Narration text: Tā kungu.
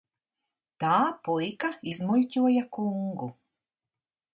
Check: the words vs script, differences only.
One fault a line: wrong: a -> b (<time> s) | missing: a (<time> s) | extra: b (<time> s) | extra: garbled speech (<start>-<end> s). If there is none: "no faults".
extra: puika izmuļķoja (1.3 s)